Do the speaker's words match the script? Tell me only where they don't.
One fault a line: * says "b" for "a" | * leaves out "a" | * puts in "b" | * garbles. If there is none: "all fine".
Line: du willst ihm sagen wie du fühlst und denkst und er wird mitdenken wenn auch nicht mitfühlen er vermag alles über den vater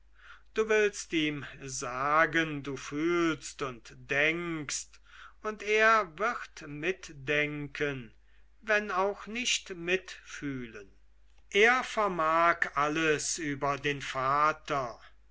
* leaves out "wie"